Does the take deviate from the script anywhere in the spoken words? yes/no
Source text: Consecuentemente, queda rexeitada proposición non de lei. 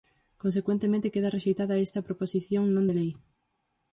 yes